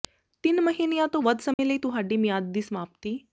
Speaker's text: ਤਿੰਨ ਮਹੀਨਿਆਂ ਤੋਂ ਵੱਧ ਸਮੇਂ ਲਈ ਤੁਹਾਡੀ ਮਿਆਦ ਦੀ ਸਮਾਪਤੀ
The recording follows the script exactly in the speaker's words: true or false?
true